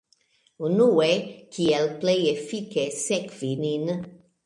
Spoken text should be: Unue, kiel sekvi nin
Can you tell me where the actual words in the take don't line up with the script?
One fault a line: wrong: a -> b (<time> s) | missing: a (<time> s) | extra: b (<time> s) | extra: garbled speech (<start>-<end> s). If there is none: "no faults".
extra: plej efike (2.0 s)